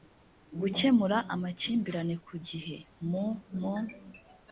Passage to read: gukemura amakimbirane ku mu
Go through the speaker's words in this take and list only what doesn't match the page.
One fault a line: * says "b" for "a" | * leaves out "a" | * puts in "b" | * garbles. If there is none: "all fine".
* puts in "gihe mu"